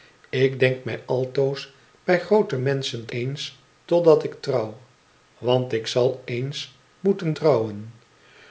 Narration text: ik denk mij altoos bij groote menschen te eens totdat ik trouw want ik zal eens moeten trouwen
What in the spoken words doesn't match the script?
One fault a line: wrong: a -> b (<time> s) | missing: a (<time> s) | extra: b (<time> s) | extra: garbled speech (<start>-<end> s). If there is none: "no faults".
no faults